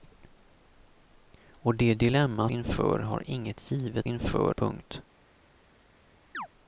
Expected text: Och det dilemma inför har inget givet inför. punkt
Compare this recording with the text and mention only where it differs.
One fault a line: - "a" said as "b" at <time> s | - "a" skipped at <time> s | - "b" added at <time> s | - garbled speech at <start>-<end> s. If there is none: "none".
none